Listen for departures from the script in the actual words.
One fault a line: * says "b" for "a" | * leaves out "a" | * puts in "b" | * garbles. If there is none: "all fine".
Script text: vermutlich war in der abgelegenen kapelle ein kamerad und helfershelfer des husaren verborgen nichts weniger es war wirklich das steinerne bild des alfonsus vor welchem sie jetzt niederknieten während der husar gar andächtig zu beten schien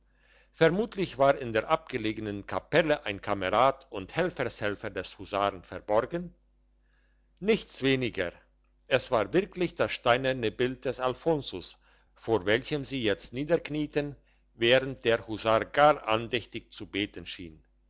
all fine